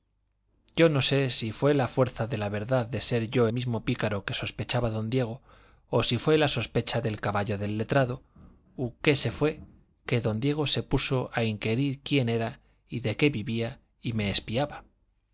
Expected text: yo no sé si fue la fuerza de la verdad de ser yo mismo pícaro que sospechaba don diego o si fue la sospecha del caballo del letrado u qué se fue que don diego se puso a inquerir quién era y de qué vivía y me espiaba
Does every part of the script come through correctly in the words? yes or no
yes